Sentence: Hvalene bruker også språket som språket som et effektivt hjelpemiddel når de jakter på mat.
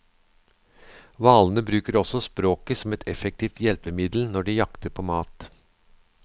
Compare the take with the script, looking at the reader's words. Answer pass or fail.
fail